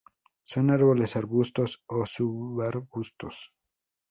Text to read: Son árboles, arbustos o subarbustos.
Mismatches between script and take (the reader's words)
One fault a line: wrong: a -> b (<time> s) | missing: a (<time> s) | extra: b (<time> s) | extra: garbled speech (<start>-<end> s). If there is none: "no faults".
no faults